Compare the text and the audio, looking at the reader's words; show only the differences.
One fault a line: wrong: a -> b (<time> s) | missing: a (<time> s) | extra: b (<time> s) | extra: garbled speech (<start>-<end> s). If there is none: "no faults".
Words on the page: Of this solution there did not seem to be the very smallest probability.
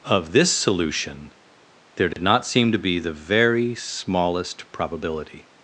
no faults